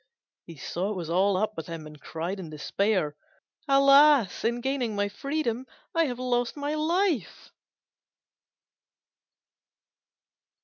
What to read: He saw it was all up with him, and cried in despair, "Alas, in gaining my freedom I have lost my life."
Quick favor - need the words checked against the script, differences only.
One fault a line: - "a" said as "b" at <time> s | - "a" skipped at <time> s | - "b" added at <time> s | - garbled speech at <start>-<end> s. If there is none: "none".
none